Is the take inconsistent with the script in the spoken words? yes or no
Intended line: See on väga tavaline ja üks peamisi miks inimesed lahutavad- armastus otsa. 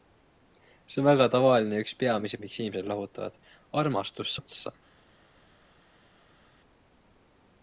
no